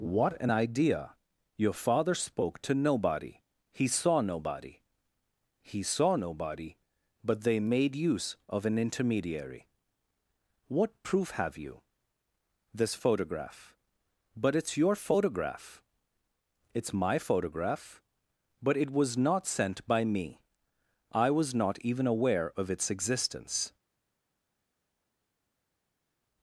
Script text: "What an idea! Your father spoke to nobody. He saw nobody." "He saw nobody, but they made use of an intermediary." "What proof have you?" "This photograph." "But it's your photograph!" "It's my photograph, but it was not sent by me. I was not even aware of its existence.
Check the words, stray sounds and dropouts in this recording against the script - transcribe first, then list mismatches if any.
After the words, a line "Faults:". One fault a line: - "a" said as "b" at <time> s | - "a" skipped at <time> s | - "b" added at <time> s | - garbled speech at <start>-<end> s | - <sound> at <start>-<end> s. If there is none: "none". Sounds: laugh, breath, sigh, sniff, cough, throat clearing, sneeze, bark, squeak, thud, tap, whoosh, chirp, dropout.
"What an idea! Your father spoke to nobody. He saw nobody." "He saw nobody, but they made use of an intermediary." "What proof have you?" "This photograph." "But it's your photograph!" "It's my photograph, but it was not sent by me. I was not even aware of its existence.
Faults:
none